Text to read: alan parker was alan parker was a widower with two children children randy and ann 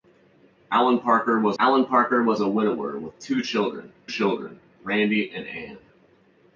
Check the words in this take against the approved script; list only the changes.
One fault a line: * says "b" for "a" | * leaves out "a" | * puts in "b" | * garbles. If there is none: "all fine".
all fine